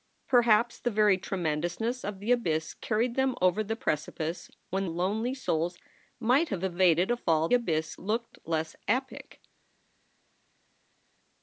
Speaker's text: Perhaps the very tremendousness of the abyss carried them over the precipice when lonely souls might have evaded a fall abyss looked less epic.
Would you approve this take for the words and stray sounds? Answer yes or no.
yes